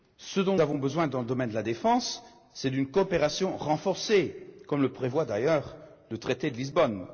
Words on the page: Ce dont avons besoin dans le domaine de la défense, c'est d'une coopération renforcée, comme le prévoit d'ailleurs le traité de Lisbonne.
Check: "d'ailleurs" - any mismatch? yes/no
no